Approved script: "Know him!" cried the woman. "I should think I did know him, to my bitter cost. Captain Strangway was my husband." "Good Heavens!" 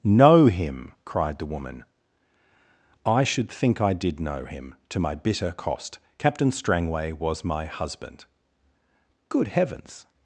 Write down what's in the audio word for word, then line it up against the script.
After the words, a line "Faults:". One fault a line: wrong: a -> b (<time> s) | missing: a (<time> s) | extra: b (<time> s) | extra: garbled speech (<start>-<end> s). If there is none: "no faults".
"Know him!" cried the woman. "I should think I did know him, to my bitter cost. Captain Strangway was my husband." "Good Heavens!"
Faults:
no faults